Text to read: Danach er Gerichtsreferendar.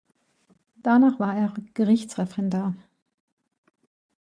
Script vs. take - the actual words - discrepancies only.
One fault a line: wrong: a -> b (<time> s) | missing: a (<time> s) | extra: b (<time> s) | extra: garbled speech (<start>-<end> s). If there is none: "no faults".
extra: war (1.2 s)